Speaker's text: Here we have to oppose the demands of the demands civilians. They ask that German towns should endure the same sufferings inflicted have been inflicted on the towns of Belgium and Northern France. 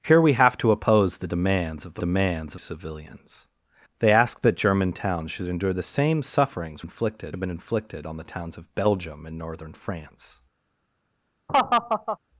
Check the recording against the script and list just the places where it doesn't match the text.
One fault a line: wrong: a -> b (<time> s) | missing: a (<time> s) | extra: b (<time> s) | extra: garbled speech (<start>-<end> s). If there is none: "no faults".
no faults